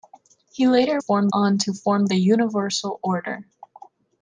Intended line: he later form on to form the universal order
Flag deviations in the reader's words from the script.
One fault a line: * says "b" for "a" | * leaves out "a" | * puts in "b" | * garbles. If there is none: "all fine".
all fine